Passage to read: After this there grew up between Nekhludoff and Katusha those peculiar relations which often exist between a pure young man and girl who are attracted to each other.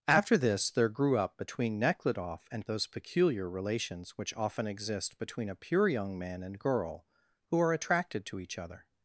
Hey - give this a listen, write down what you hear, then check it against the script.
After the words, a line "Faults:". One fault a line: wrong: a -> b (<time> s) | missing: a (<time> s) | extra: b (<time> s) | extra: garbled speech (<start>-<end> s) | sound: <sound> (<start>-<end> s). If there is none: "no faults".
After this there grew up between Nekhludoff and Those peculiar relations which often exist between a pure young man and girl who are attracted to each other.
Faults:
missing: Katusha (2.6 s)